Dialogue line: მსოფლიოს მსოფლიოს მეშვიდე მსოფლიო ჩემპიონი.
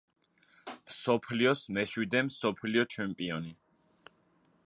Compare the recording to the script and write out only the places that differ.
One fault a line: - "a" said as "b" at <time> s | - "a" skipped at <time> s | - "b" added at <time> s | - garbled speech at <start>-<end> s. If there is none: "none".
- "მსოფლიოს" skipped at 1.6 s